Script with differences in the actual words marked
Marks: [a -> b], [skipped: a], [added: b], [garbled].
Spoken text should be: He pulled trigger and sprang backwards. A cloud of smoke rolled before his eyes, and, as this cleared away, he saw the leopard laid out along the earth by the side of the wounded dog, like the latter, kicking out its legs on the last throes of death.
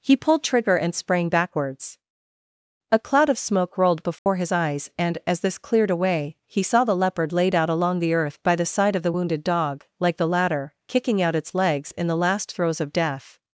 He pulled trigger and sprang backwards. A cloud of smoke rolled before his eyes, and, as this cleared away, he saw the leopard laid out along the earth by the side of the wounded dog, like the latter, kicking out its legs [on -> in] the last throes of death.